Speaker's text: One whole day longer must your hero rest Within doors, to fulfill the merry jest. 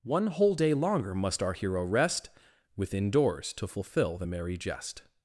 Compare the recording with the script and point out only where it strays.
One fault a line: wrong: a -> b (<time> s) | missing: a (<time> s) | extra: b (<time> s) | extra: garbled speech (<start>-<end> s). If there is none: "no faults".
wrong: your -> our (1.4 s)